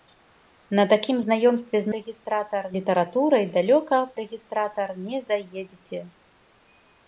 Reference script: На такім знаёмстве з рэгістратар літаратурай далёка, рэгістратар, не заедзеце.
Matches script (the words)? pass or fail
pass